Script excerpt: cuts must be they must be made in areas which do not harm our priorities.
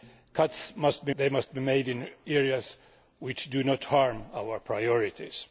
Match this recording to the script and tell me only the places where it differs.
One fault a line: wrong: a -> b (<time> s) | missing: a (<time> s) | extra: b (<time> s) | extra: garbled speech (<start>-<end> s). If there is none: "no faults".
no faults